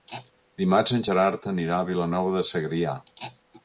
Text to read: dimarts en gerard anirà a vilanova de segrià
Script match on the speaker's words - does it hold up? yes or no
yes